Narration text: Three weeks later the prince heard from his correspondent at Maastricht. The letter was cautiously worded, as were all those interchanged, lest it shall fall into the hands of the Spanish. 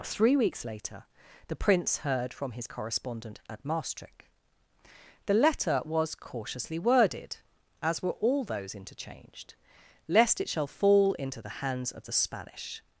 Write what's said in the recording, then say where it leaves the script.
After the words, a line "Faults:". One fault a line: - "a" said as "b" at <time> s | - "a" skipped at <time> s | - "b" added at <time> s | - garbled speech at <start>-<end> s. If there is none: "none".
Three weeks later the prince heard from his correspondent at Maastricht. The letter was cautiously worded, as were all those interchanged, lest it shall fall into the hands of the Spanish.
Faults:
none